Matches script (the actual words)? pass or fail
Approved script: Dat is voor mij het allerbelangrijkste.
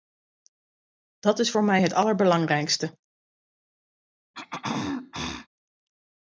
pass